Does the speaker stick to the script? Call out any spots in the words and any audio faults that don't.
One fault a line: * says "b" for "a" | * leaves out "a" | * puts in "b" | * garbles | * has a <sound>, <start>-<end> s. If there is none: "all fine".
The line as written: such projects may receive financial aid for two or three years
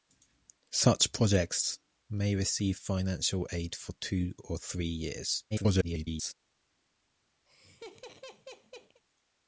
* garbles
* has a laugh, 7.5-9.0 s